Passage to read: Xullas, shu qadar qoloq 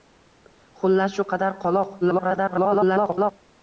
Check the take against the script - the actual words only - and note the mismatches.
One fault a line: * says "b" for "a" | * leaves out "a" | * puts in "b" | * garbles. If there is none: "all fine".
* garbles